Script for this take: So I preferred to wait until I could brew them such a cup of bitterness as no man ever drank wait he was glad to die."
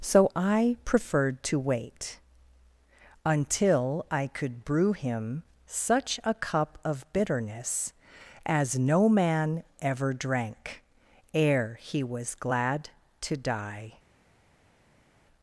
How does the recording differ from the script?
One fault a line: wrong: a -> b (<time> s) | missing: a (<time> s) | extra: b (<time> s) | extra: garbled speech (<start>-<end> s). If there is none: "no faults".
wrong: them -> him (4.9 s)
wrong: wait -> ere (11.3 s)